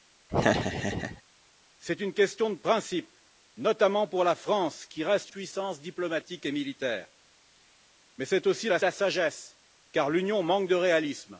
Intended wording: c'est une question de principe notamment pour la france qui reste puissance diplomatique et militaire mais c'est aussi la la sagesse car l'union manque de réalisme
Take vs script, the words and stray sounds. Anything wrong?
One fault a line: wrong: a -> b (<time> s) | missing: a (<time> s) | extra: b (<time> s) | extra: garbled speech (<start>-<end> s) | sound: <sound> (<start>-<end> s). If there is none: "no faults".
sound: laugh (0.3-1.2 s)